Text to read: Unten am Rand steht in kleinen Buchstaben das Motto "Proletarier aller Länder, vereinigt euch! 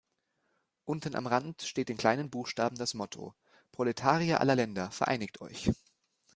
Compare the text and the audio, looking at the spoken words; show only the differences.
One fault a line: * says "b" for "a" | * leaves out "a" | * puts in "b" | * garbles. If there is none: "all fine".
all fine